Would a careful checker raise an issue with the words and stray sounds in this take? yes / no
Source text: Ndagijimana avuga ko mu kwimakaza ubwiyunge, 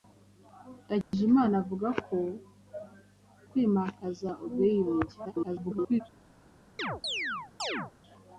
yes